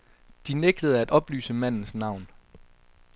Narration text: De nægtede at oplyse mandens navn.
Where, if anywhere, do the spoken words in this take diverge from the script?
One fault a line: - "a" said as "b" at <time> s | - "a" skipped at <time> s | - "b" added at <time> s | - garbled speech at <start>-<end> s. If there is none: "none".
none